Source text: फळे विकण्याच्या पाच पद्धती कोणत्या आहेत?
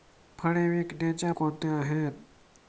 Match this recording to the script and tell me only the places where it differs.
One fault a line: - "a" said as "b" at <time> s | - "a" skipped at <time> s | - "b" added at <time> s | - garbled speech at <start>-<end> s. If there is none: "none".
- "पाच पद्धती" skipped at 1.3 s